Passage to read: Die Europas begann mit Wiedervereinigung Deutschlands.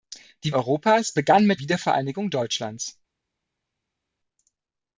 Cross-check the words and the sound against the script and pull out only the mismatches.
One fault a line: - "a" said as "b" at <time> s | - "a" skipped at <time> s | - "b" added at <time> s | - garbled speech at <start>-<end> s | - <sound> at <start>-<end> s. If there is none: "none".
none